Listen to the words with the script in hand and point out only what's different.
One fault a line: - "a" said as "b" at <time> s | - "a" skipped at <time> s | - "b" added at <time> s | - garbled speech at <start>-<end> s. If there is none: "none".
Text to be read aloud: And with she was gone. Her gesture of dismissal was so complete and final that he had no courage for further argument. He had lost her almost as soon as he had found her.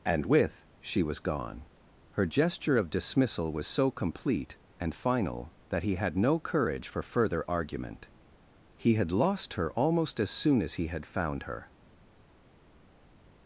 none